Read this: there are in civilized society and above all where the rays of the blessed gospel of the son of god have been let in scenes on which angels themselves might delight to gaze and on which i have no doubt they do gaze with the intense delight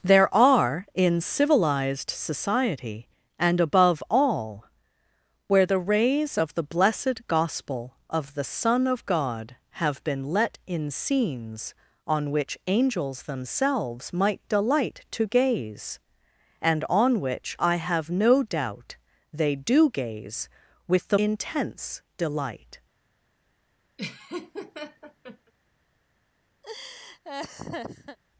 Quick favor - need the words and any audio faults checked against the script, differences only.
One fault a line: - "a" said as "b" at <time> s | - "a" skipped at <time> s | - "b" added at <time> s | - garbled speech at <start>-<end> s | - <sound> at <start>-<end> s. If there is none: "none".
- laugh at 24.0-25.5 s
- laugh at 26.6-28.2 s